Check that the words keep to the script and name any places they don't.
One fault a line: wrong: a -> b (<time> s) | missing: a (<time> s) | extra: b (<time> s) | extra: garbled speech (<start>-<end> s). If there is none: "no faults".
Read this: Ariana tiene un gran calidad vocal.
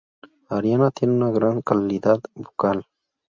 wrong: un -> una (1.1 s)